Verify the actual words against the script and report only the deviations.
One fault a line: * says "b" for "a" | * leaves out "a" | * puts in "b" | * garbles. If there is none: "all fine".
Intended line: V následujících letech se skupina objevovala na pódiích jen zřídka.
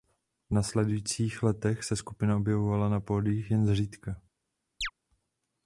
all fine